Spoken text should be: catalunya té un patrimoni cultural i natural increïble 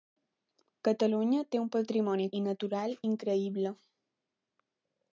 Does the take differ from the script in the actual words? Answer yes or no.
yes